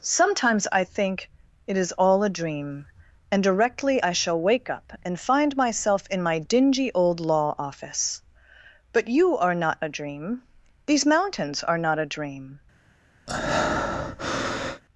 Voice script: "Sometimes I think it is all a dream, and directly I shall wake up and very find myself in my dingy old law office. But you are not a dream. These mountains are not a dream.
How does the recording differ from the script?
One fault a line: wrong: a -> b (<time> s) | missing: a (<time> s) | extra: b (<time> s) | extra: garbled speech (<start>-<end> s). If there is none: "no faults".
missing: very (5.2 s)